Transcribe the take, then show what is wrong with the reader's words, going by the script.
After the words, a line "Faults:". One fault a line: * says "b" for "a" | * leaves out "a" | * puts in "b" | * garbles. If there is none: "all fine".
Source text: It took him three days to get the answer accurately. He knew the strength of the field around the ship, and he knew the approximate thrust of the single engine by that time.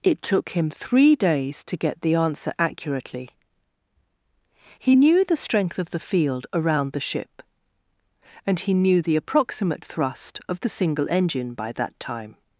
It took him three days to get the answer accurately. He knew the strength of the field around the ship, and he knew the approximate thrust of the single engine by that time.
Faults:
all fine